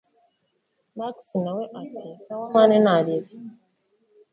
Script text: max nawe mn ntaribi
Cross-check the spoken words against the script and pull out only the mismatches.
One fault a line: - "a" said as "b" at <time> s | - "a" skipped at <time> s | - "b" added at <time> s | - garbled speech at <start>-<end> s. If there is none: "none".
- "ati sawa" added at 1.8 s